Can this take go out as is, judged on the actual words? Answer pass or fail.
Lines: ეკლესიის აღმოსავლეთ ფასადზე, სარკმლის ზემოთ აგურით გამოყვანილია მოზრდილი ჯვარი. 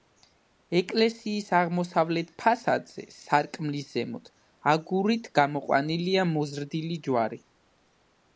pass